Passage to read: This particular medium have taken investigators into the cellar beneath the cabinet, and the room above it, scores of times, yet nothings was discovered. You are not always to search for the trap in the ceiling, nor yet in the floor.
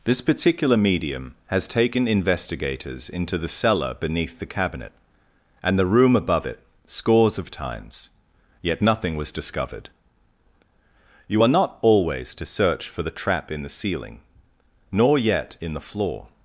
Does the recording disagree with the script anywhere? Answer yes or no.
yes